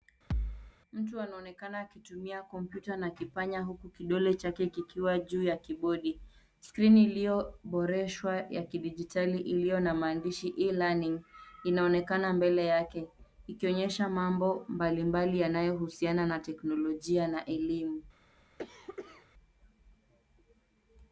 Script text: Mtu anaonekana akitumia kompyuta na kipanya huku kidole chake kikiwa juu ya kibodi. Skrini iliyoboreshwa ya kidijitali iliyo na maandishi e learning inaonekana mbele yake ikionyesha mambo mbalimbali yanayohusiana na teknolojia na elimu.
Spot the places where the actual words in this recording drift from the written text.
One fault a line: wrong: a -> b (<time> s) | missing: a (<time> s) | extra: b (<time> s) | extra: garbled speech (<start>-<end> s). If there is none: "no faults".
no faults